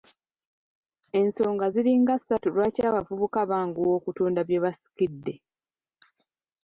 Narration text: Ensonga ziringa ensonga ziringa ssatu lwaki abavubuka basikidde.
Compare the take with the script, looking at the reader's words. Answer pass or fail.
fail